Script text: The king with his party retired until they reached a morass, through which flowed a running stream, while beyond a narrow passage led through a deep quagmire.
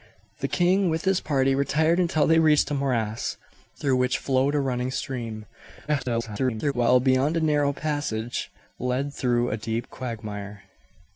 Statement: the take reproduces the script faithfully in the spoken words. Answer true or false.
false